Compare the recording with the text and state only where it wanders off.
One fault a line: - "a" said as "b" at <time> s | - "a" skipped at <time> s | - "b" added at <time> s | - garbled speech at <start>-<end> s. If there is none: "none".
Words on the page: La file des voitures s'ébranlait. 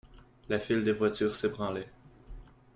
none